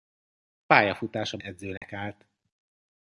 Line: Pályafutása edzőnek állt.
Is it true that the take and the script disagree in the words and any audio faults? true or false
true